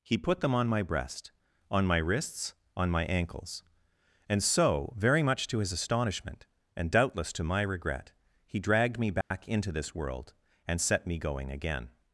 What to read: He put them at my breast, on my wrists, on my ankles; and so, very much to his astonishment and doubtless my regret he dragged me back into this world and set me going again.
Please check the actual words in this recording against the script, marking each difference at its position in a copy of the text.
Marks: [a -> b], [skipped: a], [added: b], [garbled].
He put them [at -> on] my breast, on my wrists, on my ankles; and so, very much to his astonishment and doubtless [added: to] my regret he dragged me back into this world and set me going again.